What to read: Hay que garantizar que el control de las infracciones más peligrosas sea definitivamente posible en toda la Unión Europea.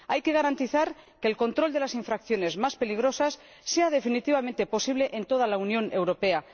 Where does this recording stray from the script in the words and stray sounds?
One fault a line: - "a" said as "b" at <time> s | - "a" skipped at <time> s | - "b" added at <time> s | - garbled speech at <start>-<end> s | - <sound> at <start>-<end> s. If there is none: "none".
none